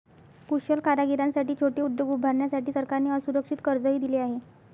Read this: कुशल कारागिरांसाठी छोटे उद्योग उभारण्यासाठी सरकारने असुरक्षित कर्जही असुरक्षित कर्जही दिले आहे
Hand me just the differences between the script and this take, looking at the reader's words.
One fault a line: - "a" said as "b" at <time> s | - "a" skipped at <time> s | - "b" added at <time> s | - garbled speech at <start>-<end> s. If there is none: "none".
- "असुरक्षित कर्जही" skipped at 4.0 s